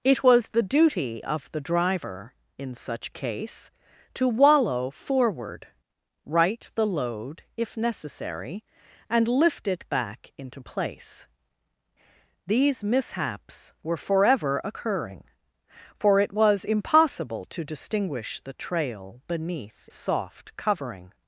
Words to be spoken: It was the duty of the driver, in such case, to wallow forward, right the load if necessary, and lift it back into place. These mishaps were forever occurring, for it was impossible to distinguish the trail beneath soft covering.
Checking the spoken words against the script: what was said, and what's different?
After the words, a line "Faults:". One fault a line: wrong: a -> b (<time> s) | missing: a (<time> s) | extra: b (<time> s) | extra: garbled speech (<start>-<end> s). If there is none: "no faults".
It was the duty of the driver, in such case, to wallow forward, right the load if necessary, and lift it back into place. These mishaps were forever occurring, for it was impossible to distinguish the trail beneath soft covering.
Faults:
no faults